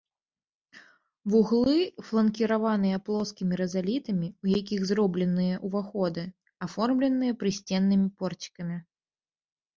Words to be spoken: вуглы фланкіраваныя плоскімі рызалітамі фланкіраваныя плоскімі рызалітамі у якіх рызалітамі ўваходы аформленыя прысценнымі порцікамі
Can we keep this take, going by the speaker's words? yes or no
no